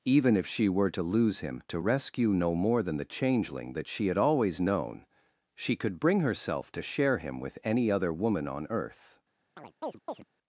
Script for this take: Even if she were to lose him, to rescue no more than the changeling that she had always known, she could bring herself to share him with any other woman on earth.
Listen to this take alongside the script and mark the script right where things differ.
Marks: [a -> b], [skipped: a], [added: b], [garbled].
Even if she were to lose him, to rescue no more than the changeling that she had always known, she could bring herself to share him with any other woman on earth.